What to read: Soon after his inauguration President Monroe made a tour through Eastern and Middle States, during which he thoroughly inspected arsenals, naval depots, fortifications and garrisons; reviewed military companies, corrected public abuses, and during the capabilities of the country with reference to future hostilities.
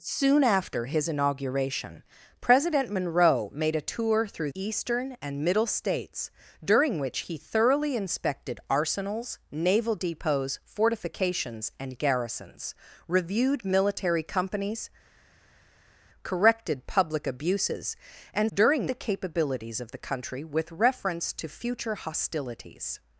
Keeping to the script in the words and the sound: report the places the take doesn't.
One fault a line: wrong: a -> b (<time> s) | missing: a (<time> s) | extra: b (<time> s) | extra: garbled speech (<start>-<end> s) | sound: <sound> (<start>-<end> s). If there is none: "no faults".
no faults